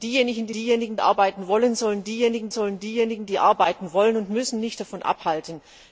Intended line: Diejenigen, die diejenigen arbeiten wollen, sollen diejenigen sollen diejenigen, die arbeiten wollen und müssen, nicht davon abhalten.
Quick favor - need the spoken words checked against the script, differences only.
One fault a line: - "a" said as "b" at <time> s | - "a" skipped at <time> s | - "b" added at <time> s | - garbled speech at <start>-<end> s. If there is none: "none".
none